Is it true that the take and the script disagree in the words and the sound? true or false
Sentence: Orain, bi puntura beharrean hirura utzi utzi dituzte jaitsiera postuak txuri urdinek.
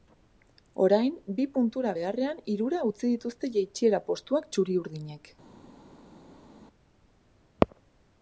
true